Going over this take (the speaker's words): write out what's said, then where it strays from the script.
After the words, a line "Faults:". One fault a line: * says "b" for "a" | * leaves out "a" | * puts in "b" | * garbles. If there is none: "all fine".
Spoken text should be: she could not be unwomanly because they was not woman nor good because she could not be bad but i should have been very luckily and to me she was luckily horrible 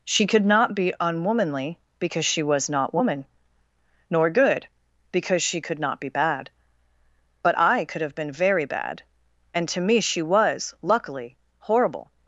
she could not be unwomanly because she was not woman nor good because she could not be bad but i could have been very bad and to me she was luckily horrible
Faults:
* says "she" for "they"
* says "could" for "should"
* says "bad" for "luckily"